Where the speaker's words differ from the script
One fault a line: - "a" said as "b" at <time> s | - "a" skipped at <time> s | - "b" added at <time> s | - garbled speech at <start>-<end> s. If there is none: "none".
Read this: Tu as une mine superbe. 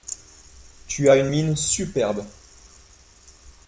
none